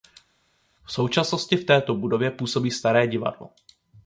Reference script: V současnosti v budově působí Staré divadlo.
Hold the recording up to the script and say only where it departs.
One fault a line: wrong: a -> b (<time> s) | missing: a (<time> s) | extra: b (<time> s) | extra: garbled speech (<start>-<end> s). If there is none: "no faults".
extra: této (1.6 s)